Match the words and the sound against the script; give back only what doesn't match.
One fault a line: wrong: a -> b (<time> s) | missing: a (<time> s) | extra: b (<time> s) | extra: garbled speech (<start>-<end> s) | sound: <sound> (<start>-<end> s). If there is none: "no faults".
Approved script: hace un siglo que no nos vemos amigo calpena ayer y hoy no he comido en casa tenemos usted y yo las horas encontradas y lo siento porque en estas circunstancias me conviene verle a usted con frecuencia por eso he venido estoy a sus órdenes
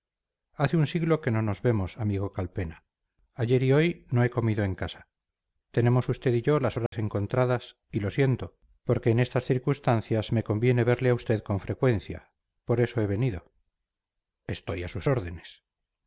sound: dropout (6.9-6.9 s)